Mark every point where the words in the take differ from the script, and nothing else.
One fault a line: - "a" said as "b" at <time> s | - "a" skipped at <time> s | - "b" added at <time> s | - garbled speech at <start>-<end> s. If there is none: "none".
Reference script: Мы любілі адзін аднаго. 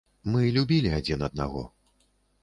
none